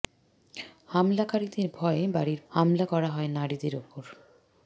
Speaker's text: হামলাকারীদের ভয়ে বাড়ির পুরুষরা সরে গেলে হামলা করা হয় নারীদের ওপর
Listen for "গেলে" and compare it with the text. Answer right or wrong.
wrong